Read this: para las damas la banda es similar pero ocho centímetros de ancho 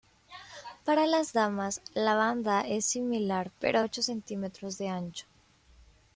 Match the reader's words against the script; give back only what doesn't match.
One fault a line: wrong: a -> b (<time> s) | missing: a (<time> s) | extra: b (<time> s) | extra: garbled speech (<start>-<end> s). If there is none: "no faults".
no faults